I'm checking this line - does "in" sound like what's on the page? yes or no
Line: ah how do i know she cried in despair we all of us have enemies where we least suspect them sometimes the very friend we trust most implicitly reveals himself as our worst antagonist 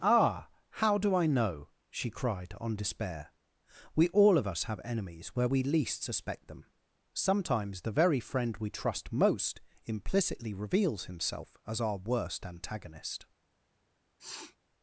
no